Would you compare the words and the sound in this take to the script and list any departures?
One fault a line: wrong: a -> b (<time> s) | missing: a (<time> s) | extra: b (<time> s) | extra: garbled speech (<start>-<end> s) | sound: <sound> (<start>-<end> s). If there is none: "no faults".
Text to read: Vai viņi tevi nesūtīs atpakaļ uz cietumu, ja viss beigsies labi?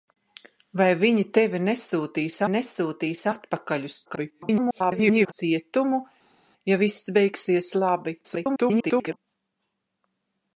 extra: nesūtīs (2.5 s)
extra: garbled speech (4.1-5.3 s)
extra: garbled speech (8.2-9.2 s)